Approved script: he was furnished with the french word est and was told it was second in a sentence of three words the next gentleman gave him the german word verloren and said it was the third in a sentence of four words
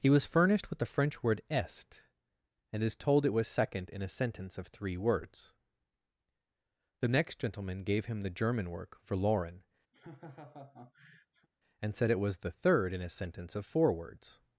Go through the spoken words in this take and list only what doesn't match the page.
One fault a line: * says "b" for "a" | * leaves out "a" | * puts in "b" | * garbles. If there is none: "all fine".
* says "is" for "was"
* says "work" for "word"